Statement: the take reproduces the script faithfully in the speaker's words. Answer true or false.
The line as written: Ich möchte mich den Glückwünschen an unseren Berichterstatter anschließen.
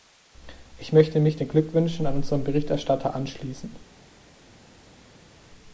true